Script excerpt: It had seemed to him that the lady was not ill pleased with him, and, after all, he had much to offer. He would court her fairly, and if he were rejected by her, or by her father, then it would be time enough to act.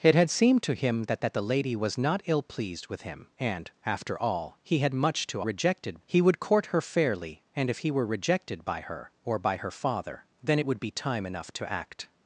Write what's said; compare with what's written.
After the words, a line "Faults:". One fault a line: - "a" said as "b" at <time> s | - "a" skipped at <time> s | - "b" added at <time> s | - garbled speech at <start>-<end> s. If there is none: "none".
It had seemed to him that that the lady was not ill pleased with him, and, after all, he had much to rejected. He would court her fairly, and if he were rejected by her, or by her father, then it would be time enough to act.
Faults:
- "that" added at 1.2 s
- "offer" said as "rejected" at 5.4 s